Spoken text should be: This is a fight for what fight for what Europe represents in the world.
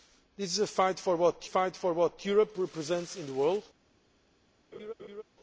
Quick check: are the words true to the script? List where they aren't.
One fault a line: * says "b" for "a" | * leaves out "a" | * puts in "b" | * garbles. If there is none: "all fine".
all fine